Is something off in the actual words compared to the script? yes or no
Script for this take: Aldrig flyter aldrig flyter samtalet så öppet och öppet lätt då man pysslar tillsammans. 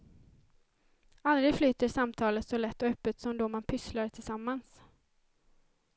yes